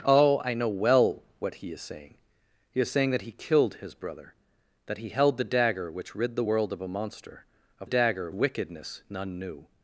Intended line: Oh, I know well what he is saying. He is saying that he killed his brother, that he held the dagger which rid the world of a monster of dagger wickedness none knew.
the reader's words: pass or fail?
pass